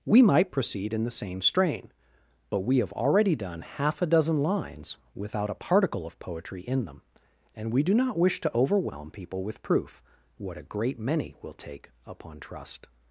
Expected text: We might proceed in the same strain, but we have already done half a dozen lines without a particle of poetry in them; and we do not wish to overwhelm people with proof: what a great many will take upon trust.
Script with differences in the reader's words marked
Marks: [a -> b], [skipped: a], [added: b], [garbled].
We might proceed in the same strain, but we have already done half a dozen lines without a particle of poetry in them; and we do not wish to overwhelm people with proof: what a great many will take upon trust.